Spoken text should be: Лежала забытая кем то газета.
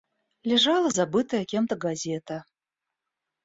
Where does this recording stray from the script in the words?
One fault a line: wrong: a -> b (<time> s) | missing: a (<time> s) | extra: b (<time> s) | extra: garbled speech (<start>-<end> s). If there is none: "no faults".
no faults